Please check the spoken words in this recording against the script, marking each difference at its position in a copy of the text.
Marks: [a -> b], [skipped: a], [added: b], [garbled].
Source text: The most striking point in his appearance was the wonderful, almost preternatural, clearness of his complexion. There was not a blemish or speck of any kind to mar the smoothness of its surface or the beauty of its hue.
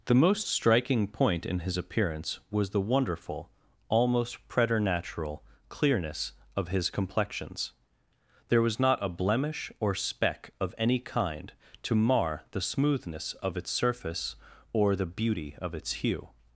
The most striking point in his appearance was the wonderful, almost preternatural, clearness of his [complexion. -> complexions] There was not a blemish or speck of any kind to mar the smoothness of its surface or the beauty of its hue.